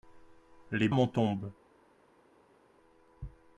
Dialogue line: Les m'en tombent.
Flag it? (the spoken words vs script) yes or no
no